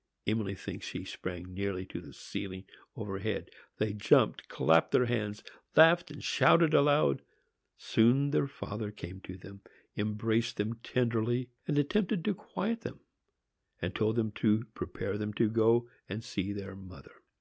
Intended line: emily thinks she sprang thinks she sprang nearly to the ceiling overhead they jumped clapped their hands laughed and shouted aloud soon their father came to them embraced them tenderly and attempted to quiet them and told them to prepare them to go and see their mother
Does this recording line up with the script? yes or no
no